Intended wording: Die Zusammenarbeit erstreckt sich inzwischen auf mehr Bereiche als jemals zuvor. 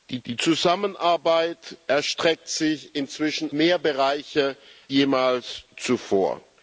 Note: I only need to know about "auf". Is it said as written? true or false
false